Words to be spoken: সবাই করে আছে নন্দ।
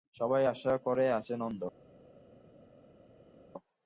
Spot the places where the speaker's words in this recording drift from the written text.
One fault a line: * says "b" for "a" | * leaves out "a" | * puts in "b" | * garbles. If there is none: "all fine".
* puts in "আশা"